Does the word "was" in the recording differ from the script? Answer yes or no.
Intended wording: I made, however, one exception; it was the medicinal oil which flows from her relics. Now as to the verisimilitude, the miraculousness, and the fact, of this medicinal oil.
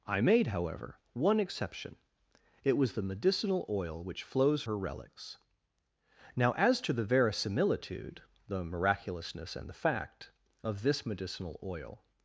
no